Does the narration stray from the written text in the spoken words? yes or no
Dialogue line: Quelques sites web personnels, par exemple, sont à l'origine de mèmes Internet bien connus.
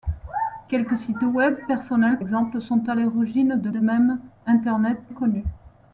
yes